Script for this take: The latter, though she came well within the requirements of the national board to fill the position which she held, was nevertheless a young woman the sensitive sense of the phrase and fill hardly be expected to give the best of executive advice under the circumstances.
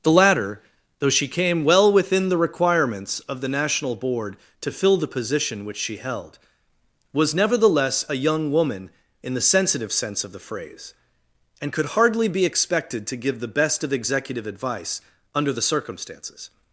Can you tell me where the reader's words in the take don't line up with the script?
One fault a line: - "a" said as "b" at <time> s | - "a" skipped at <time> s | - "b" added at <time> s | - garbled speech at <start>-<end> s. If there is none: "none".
- "in" added at 9.2 s
- "fill" said as "could" at 11.7 s